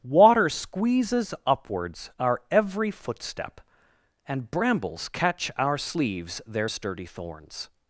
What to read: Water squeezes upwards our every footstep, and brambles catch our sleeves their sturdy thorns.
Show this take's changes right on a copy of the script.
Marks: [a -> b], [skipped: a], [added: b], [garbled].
Water squeezes upwards our every footstep, and brambles catch our sleeves their sturdy thorns.